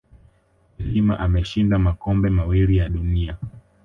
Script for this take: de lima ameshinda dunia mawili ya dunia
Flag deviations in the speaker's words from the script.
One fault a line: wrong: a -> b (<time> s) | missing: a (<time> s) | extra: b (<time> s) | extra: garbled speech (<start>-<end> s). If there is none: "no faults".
wrong: dunia -> makombe (1.8 s)